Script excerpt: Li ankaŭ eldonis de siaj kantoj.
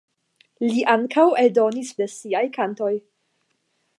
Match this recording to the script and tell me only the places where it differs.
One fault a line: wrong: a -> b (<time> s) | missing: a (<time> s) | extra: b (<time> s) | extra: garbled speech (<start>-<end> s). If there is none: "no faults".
no faults